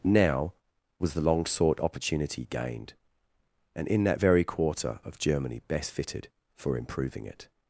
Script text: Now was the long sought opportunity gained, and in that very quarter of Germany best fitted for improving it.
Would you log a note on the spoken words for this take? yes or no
no